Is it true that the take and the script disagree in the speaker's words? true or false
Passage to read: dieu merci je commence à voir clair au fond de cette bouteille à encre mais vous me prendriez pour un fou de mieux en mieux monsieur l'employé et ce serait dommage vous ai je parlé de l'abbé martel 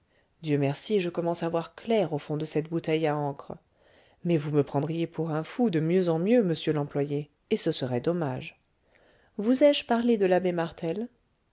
false